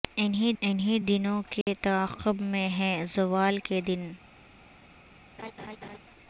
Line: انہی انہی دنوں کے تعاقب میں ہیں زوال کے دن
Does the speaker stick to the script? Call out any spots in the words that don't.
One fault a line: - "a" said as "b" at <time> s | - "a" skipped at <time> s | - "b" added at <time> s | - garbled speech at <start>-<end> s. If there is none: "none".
none